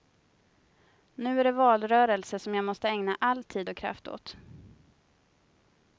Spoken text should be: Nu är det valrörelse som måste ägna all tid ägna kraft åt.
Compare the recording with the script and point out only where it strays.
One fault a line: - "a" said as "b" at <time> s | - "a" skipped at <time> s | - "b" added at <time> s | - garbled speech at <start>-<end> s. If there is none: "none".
- "jag" added at 2.5 s
- "ägna" said as "och" at 3.7 s